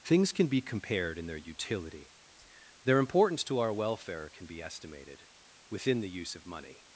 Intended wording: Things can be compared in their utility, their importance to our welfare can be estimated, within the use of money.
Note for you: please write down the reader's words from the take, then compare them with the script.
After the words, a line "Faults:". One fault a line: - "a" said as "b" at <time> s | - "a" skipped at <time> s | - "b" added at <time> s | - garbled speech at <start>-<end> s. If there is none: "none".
Things can be compared in their utility, their importance to our welfare can be estimated, within the use of money.
Faults:
none